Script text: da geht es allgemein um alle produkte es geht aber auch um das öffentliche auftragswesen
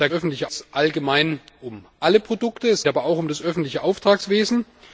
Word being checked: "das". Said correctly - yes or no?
yes